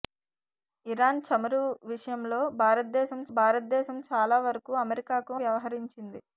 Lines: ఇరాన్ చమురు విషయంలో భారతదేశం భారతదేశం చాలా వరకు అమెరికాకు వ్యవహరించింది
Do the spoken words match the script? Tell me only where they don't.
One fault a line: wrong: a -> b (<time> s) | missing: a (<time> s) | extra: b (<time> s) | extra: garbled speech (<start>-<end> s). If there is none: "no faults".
no faults